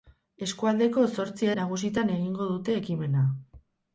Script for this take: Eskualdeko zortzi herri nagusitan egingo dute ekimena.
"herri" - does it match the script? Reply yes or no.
no